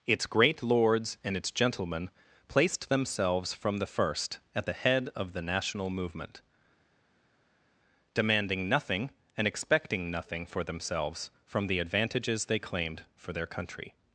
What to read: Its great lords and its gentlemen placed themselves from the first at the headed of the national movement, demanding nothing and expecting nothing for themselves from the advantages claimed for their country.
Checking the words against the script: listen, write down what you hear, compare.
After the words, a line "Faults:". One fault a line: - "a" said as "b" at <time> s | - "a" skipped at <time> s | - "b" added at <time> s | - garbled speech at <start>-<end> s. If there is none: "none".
Its great lords and its gentlemen placed themselves from the first at the head of the national movement, demanding nothing and expecting nothing for themselves from the advantages they claimed for their country.
Faults:
- "headed" said as "head" at 4.7 s
- "they" added at 12.5 s